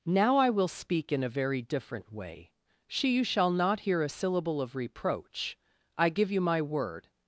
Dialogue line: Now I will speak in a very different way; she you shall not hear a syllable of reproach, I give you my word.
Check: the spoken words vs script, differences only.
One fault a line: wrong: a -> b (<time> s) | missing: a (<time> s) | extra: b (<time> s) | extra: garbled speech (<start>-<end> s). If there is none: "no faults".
no faults